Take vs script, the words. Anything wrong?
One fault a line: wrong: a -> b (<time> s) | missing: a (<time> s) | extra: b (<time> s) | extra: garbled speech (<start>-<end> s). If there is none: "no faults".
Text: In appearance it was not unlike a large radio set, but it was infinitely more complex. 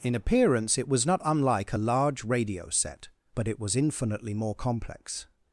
no faults